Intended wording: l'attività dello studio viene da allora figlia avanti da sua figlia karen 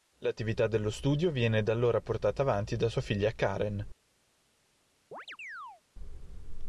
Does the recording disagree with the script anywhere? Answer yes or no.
yes